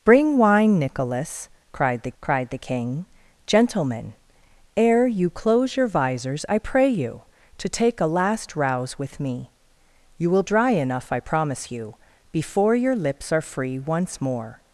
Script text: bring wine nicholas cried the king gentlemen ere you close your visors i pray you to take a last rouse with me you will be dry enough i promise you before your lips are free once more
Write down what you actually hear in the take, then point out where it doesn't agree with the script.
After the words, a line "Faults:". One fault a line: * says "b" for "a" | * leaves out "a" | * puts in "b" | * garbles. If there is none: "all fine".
bring wine nicholas cried the cried the king gentlemen ere you close your visors i pray you to take a last rouse with me you will dry enough i promise you before your lips are free once more
Faults:
* puts in "cried the"
* leaves out "be"